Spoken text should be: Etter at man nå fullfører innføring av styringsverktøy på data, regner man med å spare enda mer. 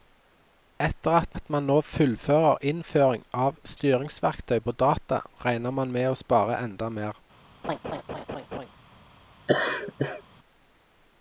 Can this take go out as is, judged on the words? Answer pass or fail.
fail